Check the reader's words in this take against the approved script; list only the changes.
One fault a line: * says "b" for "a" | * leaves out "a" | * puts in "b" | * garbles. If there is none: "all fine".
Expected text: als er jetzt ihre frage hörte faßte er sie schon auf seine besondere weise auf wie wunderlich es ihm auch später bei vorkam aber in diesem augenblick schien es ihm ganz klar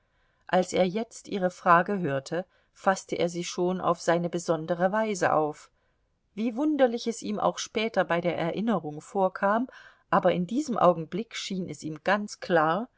* puts in "der erinnerung"